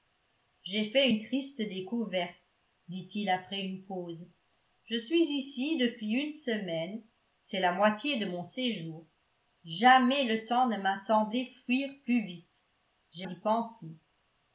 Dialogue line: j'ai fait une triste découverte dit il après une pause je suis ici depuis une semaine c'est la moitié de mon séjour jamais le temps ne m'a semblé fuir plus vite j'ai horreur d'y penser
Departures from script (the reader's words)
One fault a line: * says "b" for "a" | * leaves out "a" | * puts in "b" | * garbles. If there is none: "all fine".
* leaves out "horreur"